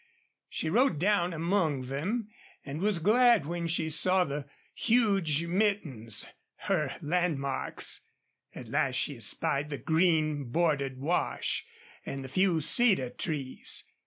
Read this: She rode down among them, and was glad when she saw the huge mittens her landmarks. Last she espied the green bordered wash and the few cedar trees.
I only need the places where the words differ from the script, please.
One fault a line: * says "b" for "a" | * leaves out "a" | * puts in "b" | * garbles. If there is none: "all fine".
* puts in "At"